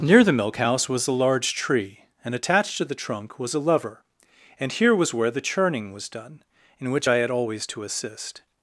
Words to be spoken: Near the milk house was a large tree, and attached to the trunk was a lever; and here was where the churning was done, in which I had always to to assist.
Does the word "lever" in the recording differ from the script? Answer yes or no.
no